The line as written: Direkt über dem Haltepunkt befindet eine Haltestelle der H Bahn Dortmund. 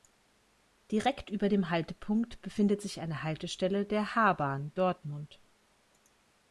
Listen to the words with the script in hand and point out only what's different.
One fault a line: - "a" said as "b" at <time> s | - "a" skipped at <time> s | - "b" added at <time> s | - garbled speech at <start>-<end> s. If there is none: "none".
- "sich" added at 2.8 s